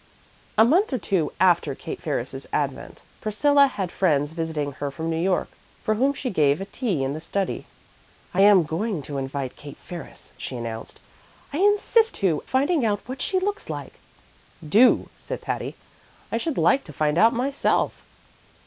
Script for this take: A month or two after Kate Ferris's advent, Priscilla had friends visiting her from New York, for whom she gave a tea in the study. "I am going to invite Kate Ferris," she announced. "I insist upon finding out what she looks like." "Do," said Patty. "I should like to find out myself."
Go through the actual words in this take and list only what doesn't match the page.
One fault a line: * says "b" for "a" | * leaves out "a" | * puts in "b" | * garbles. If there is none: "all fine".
* says "two" for "upon"